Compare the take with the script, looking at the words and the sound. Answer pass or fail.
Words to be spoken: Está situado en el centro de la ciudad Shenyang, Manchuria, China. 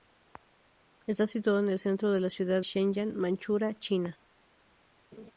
fail